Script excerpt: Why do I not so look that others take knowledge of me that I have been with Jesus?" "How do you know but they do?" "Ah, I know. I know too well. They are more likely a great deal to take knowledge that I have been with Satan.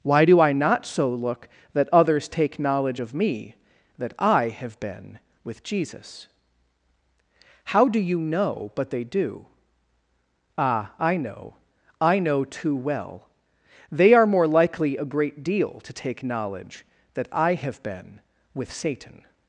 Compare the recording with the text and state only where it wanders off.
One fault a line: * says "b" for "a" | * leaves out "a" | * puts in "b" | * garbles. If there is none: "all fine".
all fine